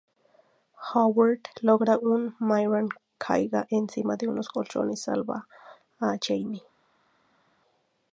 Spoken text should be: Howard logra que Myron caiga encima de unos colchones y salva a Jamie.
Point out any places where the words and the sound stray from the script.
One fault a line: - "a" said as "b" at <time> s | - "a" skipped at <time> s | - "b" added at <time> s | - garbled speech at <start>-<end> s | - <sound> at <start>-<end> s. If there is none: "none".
none